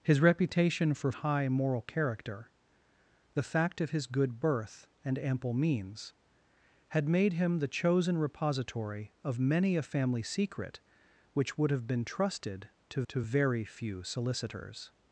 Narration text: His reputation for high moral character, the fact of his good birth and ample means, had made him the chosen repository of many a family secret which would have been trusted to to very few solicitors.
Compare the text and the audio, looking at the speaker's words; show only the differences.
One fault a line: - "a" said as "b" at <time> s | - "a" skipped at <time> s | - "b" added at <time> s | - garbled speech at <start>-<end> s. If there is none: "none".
none